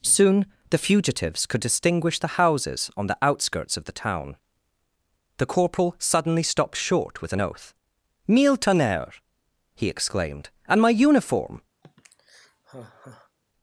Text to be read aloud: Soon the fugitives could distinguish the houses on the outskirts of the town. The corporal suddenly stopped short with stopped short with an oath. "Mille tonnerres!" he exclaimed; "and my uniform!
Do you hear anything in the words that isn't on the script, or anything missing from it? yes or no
yes